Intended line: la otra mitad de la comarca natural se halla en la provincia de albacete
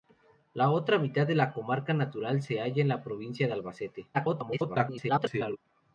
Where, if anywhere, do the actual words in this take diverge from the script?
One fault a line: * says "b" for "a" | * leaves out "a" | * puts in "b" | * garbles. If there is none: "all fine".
* garbles